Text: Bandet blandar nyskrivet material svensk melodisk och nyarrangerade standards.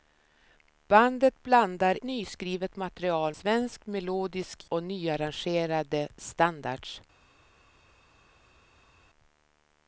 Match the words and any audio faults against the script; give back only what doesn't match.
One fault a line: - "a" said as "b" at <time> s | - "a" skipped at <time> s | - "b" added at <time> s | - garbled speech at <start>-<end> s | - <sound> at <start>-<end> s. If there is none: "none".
none